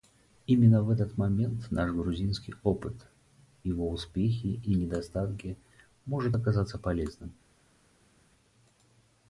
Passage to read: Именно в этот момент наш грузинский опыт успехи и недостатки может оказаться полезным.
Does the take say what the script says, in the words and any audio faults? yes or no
no